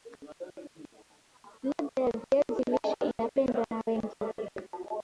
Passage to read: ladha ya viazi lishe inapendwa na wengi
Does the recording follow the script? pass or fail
pass